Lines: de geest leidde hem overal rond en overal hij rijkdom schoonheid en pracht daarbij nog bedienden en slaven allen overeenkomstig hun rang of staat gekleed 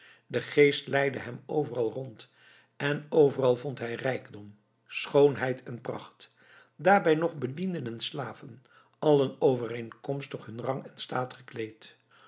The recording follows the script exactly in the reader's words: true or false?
false